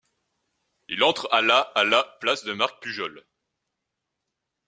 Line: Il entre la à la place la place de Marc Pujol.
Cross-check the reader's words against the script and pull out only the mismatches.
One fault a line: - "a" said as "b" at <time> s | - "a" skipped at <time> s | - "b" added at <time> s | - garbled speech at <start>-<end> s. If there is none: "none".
- "la" skipped at 1.3 s
- "place" said as "à" at 1.6 s